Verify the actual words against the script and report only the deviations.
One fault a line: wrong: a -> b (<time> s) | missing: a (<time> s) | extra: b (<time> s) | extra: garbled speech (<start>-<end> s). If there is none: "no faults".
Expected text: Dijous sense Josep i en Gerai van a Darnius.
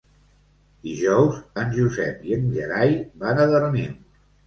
wrong: sense -> en (1.6 s)